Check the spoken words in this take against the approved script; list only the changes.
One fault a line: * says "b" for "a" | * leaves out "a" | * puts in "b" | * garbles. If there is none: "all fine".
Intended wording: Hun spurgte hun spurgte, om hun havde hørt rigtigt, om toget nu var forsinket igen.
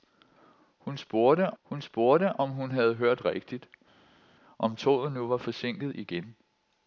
all fine